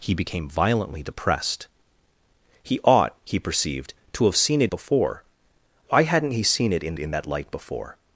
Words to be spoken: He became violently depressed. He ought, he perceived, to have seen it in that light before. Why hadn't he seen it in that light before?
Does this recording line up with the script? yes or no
no